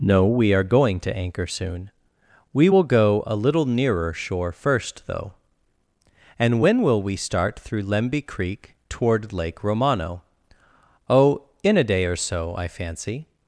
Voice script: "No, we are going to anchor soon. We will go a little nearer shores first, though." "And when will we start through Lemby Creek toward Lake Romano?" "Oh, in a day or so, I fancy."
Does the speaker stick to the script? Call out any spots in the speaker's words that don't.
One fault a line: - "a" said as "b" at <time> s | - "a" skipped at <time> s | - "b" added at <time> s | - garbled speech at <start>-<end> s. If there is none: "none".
- "shores" said as "shore" at 4.1 s